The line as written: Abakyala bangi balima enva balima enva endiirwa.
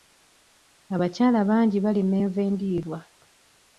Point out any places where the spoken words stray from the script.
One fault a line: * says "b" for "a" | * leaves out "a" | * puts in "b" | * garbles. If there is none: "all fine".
* leaves out "balima enva"